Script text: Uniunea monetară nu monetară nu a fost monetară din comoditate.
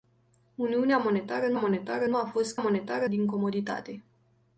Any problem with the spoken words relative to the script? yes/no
no